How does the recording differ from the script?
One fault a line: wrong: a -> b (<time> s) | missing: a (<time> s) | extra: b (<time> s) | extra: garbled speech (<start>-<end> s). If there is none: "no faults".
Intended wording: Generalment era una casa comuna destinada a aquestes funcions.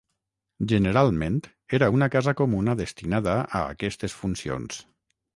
no faults